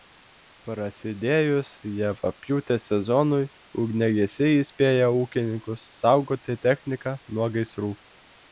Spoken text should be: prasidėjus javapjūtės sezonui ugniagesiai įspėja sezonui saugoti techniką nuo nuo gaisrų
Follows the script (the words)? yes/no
no